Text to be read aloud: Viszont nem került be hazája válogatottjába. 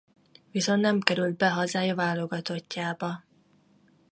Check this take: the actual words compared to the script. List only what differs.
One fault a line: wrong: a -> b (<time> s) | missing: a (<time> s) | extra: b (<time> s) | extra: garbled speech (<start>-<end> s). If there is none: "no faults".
no faults